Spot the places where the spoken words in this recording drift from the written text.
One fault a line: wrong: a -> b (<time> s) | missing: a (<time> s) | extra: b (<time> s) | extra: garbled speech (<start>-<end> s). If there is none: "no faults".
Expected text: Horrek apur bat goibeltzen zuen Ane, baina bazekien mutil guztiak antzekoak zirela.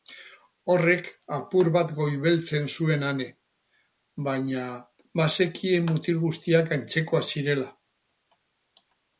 no faults